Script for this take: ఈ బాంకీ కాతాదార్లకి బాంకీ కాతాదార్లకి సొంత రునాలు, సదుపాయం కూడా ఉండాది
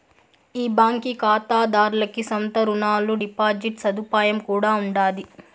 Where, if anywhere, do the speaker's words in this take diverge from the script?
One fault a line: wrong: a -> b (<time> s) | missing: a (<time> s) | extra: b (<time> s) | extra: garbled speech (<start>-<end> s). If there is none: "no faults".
missing: బాంకీ కాతాదార్లకి (2.2 s)
extra: డిపాజిట్ (3.2 s)